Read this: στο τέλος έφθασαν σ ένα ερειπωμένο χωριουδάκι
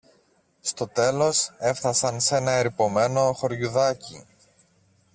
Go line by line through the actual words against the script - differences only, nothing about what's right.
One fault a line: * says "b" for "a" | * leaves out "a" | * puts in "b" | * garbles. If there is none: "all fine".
all fine